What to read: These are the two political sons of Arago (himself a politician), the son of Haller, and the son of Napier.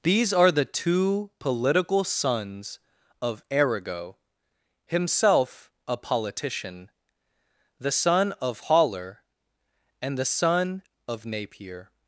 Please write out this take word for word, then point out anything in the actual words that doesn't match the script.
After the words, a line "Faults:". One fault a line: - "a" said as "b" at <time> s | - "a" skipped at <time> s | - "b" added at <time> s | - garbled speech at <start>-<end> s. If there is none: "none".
These are the two political sons of Arago (himself a politician), the son of Haller, and the son of Napier.
Faults:
none